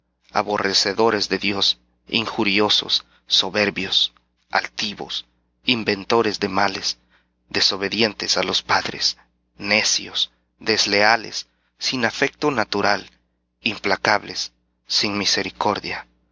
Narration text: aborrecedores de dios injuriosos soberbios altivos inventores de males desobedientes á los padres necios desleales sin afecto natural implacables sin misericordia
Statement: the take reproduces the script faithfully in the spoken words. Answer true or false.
true